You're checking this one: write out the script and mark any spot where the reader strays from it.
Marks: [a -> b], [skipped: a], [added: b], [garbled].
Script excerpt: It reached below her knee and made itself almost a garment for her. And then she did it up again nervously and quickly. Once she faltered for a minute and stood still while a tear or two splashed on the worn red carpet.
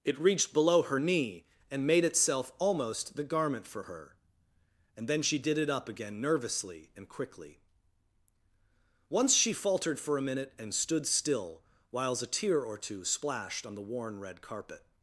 It reached below her knee and made itself almost [a -> the] garment for her. And then she did it up again nervously and quickly. Once she faltered for a minute and stood still [while -> whiles] a tear or two splashed on the worn red carpet.